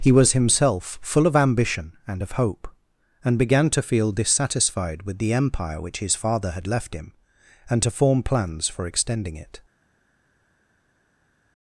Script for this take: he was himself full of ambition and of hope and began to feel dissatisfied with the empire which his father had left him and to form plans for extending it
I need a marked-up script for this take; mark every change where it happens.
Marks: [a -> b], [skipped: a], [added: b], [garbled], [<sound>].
he was himself full of ambition and of hope and began to feel dissatisfied with the empire which his father had left him and to form plans for extending it